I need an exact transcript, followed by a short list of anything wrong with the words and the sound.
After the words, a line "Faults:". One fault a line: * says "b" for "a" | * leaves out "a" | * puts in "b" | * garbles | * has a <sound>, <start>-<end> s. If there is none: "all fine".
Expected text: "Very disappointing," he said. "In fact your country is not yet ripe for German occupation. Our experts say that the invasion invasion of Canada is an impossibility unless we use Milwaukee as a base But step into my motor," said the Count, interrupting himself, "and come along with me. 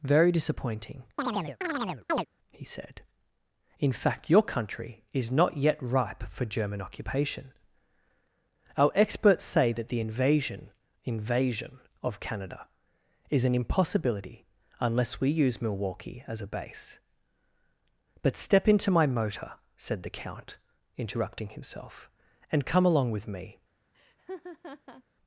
"Very disappointing," he said. "In fact your country is not yet ripe for German occupation. Our experts say that the invasion invasion of Canada is an impossibility unless we use Milwaukee as a base But step into my motor," said the Count, interrupting himself, "and come along with me.
Faults:
* has a chirp, 1.2-2.3 s
* has a laugh, 23.9-25.0 s